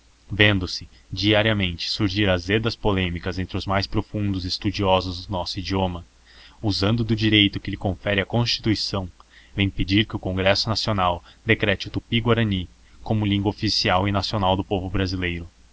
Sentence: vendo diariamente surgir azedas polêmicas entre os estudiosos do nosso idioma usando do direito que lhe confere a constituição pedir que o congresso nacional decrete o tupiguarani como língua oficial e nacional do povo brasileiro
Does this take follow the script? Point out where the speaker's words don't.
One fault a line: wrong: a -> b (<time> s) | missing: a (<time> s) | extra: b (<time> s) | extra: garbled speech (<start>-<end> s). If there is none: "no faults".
extra: se (0.7 s)
extra: mais profundos (3.7 s)
extra: vem (9.6 s)